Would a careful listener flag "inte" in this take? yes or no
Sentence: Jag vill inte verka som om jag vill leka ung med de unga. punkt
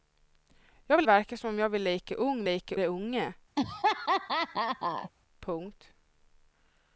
yes